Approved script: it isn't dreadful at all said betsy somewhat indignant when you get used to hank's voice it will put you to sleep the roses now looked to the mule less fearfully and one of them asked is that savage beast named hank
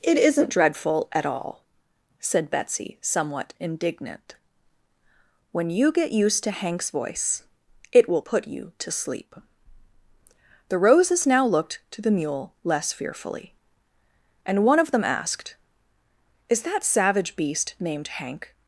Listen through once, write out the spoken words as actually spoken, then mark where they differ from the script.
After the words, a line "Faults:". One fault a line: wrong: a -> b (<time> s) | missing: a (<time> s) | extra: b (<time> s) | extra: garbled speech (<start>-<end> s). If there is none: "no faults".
it isn't dreadful at all said betsy somewhat indignant when you get used to hank's voice it will put you to sleep the roses now looked to the mule less fearfully and one of them asked is that savage beast named hank
Faults:
no faults